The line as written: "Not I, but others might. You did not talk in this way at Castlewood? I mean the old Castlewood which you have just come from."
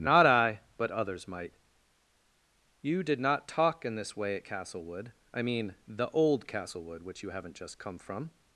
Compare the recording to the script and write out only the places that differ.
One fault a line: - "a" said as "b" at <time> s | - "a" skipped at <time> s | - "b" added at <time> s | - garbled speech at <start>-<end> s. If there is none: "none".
- "have" said as "haven't" at 7.3 s